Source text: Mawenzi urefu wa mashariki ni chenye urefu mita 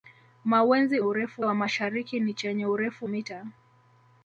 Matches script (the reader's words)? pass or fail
pass